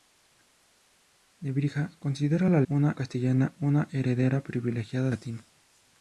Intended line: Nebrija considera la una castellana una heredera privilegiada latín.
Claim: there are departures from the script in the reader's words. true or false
false